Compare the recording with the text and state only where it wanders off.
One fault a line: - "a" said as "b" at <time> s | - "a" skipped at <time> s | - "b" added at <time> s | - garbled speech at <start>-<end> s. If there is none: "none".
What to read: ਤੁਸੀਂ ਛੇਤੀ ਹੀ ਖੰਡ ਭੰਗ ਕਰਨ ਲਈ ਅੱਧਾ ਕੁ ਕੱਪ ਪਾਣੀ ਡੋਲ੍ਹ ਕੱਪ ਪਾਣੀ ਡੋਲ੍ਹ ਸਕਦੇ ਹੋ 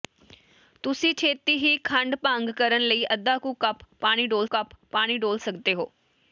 none